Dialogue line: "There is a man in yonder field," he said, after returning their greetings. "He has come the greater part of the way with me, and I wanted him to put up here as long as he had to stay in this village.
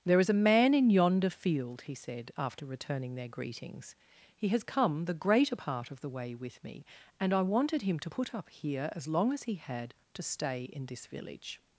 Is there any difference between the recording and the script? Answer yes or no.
no